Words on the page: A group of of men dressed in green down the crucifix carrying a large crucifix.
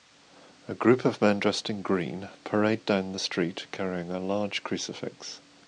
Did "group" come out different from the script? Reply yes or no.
no